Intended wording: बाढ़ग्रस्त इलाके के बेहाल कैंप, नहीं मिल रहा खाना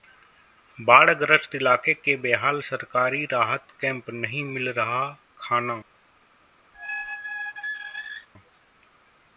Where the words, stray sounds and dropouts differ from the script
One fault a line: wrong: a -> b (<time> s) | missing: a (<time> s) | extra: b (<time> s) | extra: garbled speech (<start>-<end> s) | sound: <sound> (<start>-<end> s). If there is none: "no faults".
extra: सरकारी राहत (2.6 s)
sound: squeak (6.7-8.3 s)